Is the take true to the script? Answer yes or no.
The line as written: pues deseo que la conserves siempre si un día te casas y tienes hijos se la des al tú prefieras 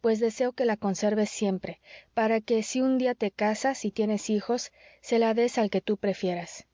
no